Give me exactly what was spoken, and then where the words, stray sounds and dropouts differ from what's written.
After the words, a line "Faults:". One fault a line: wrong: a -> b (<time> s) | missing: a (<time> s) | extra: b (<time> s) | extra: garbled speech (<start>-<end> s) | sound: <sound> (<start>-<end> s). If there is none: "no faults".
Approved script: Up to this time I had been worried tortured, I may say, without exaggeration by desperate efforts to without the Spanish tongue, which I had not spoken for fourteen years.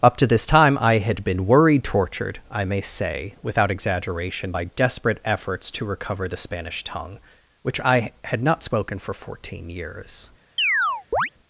Up to this time I had been worried tortured, I may say, without exaggeration by desperate efforts to recover the Spanish tongue, which I had not spoken for fourteen years.
Faults:
wrong: without -> recover (5.9 s)
sound: chirp (10.6-11.3 s)